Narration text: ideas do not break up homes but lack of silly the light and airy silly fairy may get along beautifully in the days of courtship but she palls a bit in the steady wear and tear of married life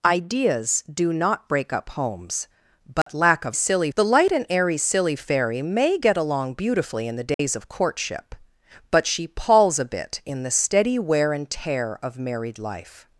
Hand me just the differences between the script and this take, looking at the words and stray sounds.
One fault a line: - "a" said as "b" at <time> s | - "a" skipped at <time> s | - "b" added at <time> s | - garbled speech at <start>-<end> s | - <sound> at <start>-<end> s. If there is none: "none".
- dropout at 3.0-3.1 s
- dropout at 7.3-7.4 s